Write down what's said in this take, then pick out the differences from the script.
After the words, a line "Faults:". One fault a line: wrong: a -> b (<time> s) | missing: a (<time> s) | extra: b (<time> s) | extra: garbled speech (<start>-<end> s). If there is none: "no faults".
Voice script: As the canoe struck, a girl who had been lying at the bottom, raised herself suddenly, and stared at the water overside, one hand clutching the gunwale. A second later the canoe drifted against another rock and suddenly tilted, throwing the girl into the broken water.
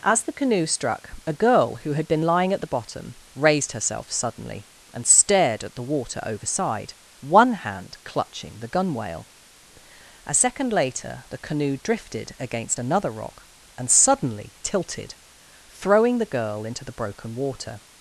As the canoe struck, a girl who had been lying at the bottom, raised herself suddenly, and stared at the water overside, one hand clutching the gunwale. A second later the canoe drifted against another rock and suddenly tilted, throwing the girl into the broken water.
Faults:
no faults